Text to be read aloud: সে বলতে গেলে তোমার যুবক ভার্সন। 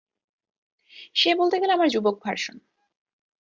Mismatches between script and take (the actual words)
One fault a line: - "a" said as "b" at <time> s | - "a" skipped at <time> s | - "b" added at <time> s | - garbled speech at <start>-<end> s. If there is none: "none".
- "তোমার" said as "আমার" at 1.7 s